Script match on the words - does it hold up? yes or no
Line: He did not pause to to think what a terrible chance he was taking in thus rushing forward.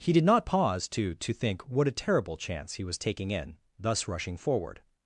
yes